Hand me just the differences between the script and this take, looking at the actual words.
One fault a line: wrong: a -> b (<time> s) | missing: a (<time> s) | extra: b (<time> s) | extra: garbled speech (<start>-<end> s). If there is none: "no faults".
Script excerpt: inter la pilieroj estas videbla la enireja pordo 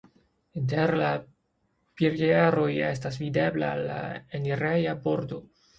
no faults